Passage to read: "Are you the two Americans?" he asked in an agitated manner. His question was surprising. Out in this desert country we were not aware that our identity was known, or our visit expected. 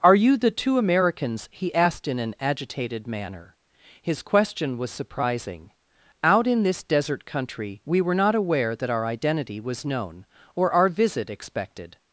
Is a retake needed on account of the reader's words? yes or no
no